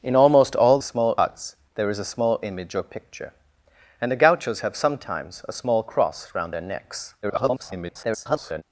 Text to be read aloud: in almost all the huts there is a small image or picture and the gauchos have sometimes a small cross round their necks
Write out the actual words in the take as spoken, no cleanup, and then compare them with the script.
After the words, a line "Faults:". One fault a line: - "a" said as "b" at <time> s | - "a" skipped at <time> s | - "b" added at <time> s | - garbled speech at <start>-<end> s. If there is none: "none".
in almost all small huts there is a small image or picture and the gauchos have sometimes a small cross round their necks [garbled]
Faults:
- "the" said as "small" at 0.8 s
- garbled speech at 7.2-8.6 s